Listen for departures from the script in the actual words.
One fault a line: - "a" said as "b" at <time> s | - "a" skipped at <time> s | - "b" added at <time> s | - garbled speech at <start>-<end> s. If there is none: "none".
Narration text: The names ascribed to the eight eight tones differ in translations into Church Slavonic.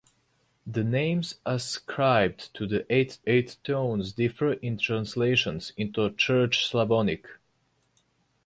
none